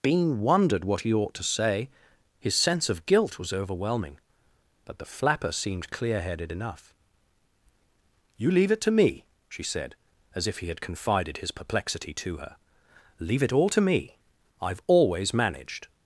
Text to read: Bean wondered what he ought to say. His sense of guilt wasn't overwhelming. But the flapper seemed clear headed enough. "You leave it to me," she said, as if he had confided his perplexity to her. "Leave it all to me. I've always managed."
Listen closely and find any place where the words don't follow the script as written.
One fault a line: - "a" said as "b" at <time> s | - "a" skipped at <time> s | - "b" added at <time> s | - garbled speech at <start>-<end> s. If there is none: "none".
- "wasn't" said as "was" at 3.4 s